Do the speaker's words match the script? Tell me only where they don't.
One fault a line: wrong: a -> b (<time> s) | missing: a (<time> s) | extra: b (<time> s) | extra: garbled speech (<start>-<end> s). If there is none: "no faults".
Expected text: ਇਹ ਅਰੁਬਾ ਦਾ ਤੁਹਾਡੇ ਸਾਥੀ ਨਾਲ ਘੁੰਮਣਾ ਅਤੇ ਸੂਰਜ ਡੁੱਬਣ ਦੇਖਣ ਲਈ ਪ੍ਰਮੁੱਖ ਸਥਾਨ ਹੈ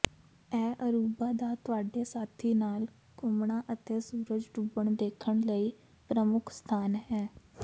no faults